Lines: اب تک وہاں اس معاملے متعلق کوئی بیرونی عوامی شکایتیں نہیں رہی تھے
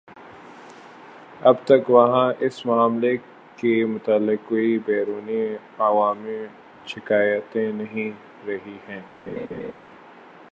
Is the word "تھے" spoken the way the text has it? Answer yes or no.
no